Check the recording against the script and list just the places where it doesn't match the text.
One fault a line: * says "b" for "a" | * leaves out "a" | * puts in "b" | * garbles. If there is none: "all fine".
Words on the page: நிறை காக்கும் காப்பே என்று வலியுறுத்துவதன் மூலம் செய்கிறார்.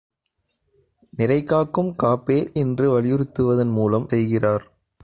all fine